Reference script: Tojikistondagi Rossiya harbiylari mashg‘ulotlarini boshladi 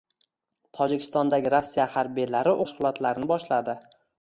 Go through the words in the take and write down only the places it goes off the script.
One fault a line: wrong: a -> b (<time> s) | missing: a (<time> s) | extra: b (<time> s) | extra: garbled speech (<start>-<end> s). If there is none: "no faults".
no faults